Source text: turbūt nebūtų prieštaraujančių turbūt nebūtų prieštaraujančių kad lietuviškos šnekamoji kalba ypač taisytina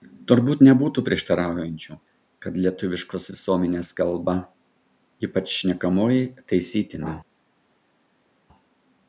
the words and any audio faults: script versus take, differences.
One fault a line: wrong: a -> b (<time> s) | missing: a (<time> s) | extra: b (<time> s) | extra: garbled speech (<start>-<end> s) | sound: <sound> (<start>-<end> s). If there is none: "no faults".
missing: turbūt nebūtų prieštaraujančių (2.0 s)
wrong: šnekamoji -> visuomenės (3.3 s)
extra: šnekamoji (5.6 s)